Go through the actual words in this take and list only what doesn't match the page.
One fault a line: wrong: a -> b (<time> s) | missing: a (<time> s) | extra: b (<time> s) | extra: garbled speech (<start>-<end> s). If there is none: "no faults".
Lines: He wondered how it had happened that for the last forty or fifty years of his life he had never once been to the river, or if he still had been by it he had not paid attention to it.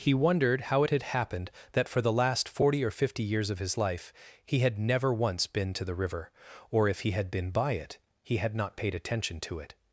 missing: still (7.1 s)